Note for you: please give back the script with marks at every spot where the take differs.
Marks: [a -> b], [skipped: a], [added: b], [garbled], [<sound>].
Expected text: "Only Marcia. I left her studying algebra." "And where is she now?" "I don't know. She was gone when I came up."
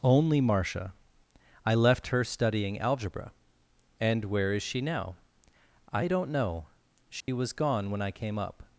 "Only Marcia. I left her studying algebra." "And where is she now?" "I don't know. She [dropout] was gone when I came up."